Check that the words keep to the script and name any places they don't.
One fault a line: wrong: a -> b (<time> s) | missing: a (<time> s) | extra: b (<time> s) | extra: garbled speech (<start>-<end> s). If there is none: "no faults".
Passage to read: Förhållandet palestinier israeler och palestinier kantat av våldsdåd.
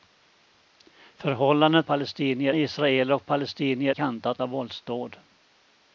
no faults